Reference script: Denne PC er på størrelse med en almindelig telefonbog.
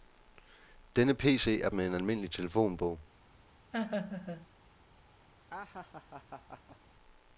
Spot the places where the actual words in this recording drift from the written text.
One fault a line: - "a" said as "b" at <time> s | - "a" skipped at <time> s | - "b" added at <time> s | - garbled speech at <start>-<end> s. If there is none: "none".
- "på størrelse" skipped at 1.7 s